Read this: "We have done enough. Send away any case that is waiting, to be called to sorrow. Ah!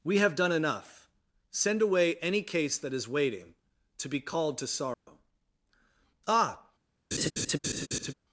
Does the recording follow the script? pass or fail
pass